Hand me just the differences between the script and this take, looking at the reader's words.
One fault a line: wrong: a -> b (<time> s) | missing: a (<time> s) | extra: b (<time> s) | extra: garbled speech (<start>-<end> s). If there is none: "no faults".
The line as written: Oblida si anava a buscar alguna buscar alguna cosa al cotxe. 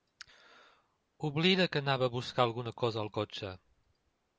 wrong: si -> que (1.7 s)
missing: buscar alguna (2.7 s)